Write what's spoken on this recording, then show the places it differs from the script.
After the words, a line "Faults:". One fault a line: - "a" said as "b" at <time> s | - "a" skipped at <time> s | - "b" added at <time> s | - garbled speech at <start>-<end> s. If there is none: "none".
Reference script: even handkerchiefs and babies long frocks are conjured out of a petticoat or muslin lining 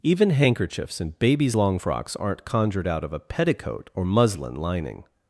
even handkerchiefs and babies long frocks aren't conjured out of a petticoat or muslin lining
Faults:
- "are" said as "aren't" at 2.2 s